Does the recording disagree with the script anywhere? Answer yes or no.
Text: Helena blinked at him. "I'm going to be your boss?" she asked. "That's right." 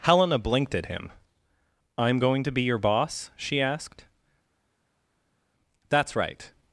no